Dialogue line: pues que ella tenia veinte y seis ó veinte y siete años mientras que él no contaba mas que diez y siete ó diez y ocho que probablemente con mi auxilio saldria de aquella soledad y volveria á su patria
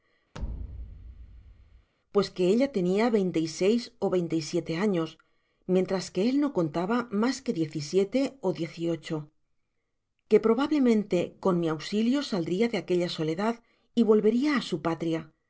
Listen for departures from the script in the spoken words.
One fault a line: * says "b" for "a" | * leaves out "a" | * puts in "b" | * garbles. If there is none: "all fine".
all fine